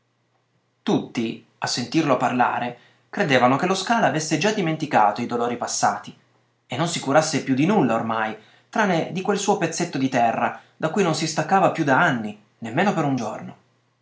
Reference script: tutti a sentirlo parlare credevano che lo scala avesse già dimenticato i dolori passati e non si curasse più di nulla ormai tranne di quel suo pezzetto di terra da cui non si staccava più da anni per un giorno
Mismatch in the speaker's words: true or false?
true